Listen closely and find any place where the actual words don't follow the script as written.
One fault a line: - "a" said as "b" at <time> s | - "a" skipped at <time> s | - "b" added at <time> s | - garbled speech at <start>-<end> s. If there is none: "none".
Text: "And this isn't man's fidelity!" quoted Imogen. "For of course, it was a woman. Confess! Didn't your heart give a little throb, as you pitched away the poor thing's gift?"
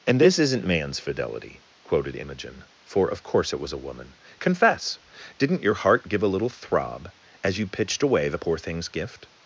none